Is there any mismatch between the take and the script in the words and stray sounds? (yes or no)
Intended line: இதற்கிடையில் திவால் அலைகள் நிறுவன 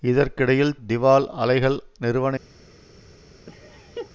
yes